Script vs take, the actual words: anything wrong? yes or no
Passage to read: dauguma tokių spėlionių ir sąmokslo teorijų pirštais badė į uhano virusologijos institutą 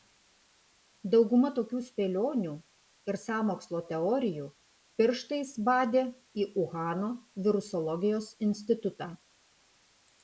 no